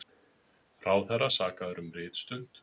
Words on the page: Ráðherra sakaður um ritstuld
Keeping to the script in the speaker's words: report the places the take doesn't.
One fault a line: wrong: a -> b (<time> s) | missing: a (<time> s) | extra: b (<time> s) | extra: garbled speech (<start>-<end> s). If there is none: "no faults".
no faults